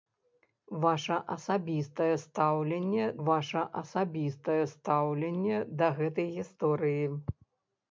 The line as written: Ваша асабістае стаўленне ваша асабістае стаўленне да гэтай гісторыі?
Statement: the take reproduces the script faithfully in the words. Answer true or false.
true